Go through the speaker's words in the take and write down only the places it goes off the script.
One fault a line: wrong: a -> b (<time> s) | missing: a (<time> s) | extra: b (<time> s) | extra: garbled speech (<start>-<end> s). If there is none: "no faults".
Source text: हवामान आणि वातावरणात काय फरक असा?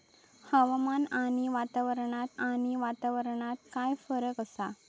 extra: आणि वातावरणात (2.4 s)